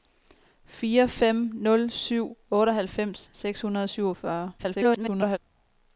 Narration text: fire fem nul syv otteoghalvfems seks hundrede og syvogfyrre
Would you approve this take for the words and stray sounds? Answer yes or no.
no